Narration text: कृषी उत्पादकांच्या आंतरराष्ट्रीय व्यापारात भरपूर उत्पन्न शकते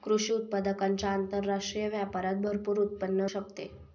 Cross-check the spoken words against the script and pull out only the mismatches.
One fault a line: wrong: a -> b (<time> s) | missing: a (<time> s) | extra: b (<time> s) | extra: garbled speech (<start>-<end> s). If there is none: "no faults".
no faults